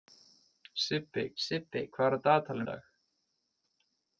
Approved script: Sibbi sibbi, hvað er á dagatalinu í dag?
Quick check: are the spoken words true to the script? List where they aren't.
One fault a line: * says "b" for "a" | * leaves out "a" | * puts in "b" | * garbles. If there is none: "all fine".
all fine